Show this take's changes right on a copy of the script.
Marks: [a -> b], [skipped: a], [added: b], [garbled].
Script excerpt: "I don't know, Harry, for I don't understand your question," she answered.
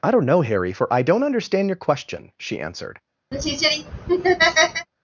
"I don't know, Harry, for I don't understand your question," she answered.